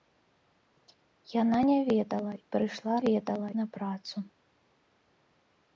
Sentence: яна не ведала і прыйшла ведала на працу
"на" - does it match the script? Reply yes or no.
yes